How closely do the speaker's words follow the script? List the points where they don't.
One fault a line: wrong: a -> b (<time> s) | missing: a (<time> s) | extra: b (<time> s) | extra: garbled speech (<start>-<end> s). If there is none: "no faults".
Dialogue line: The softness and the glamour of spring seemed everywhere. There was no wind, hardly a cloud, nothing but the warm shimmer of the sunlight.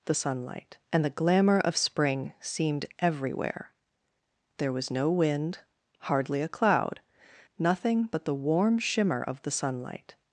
wrong: softness -> sunlight (0.1 s)